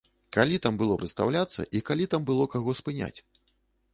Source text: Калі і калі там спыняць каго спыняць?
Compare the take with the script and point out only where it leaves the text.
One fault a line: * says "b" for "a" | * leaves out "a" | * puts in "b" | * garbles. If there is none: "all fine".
* puts in "там было прадстаўляцца"
* says "было" for "спыняць"